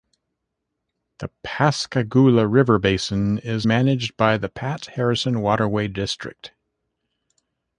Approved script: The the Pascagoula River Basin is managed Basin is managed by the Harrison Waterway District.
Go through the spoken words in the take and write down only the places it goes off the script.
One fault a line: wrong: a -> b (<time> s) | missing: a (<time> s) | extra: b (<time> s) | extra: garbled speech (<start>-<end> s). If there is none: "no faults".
missing: the (1.3 s)
missing: Basin is managed (4.1 s)
extra: Pat (4.5 s)